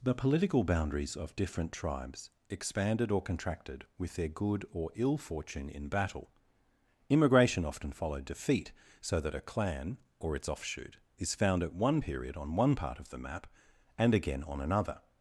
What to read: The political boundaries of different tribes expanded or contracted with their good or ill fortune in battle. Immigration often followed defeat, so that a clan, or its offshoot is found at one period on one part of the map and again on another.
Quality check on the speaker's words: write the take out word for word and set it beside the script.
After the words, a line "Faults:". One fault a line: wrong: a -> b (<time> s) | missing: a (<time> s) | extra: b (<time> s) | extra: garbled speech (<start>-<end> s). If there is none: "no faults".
The political boundaries of different tribes expanded or contracted with their good or ill fortune in battle. Immigration often followed defeat, so that a clan, or its offshoot is found at one period on one part of the map and again on another.
Faults:
no faults